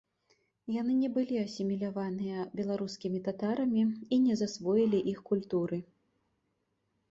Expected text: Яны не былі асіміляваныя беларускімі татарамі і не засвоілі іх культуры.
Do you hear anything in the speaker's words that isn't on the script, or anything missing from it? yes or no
no